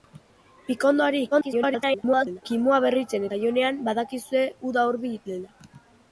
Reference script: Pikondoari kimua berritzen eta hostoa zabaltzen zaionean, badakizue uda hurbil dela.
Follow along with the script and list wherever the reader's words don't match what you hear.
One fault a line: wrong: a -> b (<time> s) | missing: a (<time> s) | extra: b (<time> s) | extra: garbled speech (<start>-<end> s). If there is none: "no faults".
extra: garbled speech (1.3-2.4 s)
missing: eta hostoa zabaltzen (3.3 s)